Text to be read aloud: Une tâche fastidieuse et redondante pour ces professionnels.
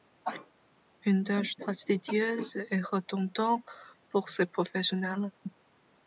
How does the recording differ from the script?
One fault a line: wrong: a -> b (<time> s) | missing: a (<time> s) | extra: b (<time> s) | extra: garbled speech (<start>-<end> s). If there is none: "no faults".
no faults